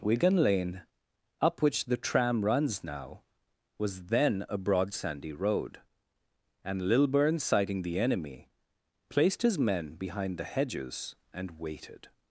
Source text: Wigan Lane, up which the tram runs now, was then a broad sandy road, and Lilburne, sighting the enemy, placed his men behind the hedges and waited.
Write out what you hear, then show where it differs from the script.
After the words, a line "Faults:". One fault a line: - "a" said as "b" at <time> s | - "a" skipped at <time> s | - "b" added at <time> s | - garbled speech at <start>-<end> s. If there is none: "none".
Wigan Lane, up which the tram runs now, was then a broad sandy road, and Lilburne, sighting the enemy, placed his men behind the hedges and waited.
Faults:
none